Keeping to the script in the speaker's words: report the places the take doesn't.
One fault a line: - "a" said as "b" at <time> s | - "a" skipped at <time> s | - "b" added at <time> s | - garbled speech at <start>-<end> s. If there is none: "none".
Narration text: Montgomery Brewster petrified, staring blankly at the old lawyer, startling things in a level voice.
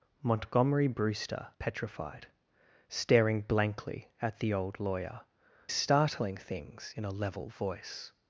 none